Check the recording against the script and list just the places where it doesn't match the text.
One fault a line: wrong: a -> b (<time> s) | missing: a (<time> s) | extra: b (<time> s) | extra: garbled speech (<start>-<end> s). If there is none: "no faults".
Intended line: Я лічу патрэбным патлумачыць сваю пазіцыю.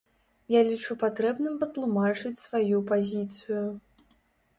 no faults